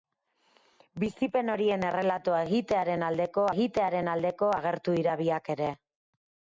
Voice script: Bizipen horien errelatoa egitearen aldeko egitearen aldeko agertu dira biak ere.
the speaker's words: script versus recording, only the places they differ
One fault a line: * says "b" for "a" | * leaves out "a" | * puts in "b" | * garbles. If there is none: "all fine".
all fine